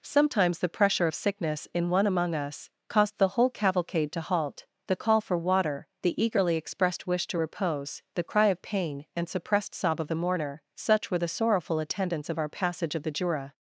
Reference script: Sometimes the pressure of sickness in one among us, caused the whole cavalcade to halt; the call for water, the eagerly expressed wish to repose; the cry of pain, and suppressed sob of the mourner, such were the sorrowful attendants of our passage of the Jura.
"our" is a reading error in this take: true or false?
false